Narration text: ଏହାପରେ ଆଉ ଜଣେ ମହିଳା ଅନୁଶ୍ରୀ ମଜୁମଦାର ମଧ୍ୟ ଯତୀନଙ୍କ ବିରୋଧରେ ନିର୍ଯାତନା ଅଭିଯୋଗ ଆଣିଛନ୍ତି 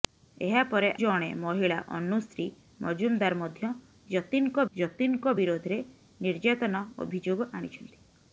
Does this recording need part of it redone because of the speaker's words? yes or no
yes